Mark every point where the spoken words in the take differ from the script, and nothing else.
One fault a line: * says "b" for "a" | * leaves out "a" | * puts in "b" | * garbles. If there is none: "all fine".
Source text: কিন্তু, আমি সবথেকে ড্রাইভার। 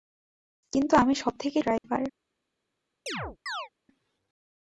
all fine